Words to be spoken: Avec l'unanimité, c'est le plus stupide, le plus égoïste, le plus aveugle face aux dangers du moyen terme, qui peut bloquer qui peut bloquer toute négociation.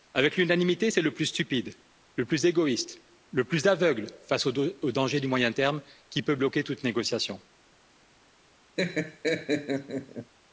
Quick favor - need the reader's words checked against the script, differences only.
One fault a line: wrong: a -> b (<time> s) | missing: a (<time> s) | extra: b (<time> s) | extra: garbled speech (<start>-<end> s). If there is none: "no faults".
missing: qui peut bloquer (6.6 s)